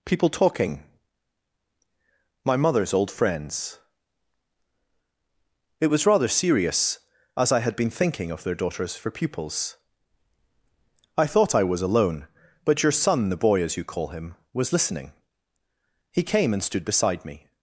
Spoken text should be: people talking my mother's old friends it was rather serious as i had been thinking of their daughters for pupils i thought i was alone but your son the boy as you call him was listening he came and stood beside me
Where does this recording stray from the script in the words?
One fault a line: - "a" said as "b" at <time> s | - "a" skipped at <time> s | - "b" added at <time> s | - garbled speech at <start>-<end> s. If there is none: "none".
none